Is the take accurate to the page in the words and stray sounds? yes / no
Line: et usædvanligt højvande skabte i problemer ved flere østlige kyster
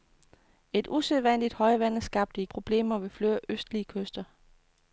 yes